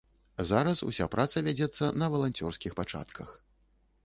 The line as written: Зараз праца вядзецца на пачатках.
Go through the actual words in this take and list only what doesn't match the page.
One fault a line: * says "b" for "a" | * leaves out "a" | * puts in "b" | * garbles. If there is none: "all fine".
* puts in "уся"
* puts in "валанцёрскіх"